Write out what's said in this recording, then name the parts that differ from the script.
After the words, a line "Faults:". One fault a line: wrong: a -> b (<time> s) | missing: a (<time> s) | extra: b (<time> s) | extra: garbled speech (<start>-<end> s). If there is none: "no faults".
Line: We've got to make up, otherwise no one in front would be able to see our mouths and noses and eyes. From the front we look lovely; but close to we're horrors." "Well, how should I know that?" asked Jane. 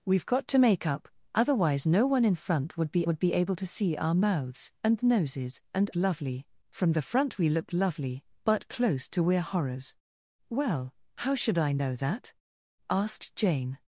We've got to make up, otherwise no one in front would be would be able to see our mouths and noses and lovely. From the front we look lovely; but close to we're horrors." "Well, how should I know that?" asked Jane.
Faults:
extra: would be (3.0 s)
wrong: eyes -> lovely (5.9 s)